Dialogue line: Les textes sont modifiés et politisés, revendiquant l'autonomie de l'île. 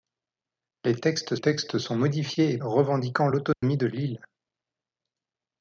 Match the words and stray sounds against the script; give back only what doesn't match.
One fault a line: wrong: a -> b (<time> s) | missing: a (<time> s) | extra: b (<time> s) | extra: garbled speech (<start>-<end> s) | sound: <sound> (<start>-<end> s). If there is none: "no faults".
extra: textes (1.4 s)
missing: politisés (2.6 s)
sound: dropout (3.5-3.6 s)